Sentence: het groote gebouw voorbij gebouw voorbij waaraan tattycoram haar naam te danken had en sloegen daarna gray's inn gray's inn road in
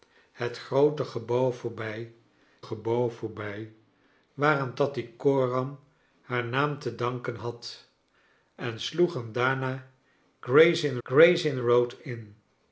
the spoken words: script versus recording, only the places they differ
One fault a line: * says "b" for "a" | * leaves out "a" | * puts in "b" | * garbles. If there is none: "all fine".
all fine